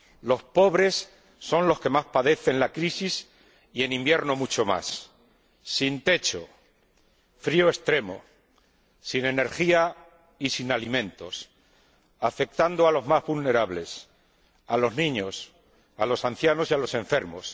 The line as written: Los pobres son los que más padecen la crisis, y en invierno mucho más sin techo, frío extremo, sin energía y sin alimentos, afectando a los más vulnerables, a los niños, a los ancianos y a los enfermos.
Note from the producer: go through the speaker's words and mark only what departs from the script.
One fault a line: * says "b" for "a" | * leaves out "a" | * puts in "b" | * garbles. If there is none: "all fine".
all fine